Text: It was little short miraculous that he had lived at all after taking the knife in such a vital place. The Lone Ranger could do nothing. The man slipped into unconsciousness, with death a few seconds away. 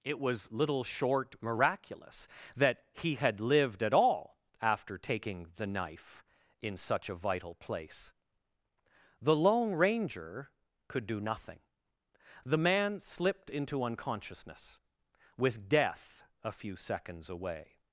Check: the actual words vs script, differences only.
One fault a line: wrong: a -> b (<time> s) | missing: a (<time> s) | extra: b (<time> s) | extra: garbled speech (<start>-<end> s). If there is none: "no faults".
no faults